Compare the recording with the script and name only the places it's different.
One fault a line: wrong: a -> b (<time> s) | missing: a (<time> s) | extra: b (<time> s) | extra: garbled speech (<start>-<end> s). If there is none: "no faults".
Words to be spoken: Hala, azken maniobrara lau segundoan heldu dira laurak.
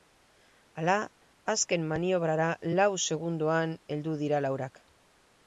no faults